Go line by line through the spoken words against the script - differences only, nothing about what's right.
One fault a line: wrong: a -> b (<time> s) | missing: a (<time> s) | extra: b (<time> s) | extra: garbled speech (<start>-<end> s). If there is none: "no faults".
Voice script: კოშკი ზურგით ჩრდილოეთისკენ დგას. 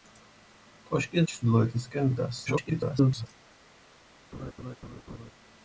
missing: ზურგით (1.2 s)
extra: garbled speech (2.5-3.3 s)